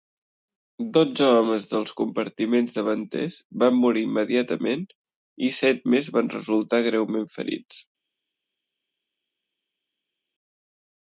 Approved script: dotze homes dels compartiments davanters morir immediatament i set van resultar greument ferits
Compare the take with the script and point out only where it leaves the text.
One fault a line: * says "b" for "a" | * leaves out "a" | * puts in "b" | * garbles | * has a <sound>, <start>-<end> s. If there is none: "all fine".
* puts in "van"
* puts in "més"